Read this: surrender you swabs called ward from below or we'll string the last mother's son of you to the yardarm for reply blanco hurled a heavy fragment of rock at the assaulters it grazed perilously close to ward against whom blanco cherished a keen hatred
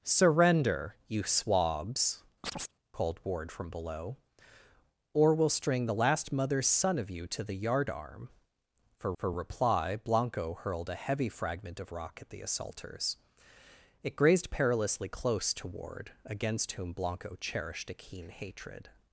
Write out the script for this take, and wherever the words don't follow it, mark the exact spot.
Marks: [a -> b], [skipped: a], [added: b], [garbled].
surrender you swabs called ward from below or we'll string the last mother's son of you to the yardarm for [added: for] reply blanco hurled a heavy fragment of rock at the assaulters it grazed perilously close to ward against whom blanco cherished a keen hatred